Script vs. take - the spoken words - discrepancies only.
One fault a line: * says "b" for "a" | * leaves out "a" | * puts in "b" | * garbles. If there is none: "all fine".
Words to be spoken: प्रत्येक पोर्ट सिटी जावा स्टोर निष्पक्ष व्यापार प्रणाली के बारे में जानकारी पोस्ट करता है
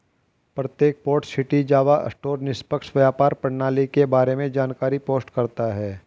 all fine